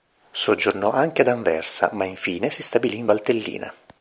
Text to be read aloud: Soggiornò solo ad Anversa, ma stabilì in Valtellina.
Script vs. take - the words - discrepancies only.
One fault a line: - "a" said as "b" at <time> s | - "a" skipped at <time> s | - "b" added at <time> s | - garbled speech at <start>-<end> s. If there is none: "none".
- "solo" said as "anche" at 0.9 s
- "infine si" added at 2.0 s